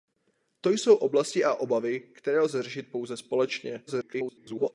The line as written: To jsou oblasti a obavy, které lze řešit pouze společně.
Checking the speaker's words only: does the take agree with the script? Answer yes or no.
no